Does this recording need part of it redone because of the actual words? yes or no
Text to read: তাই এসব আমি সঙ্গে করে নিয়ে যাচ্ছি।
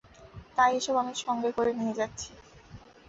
no